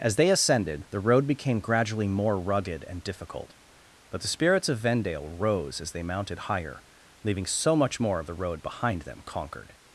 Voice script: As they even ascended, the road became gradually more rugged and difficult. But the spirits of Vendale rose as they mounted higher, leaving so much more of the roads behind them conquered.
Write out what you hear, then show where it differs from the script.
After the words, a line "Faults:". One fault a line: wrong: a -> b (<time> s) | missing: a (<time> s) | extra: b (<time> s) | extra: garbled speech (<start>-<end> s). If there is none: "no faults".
As they ascended, the road became gradually more rugged and difficult. But the spirits of Vendale rose as they mounted higher, leaving so much more of the road behind them conquered.
Faults:
missing: even (0.3 s)
wrong: roads -> road (8.3 s)